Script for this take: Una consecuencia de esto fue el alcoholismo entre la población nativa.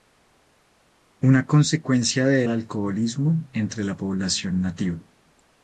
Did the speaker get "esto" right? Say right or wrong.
wrong